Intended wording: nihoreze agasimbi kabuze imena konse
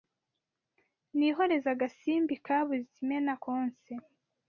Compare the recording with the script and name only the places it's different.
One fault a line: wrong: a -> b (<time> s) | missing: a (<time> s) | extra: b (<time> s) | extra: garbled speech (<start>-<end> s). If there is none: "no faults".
no faults